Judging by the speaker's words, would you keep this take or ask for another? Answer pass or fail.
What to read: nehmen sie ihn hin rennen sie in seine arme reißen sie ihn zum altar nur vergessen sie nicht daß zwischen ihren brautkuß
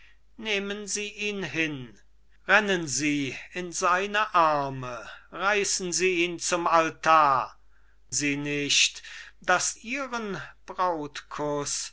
fail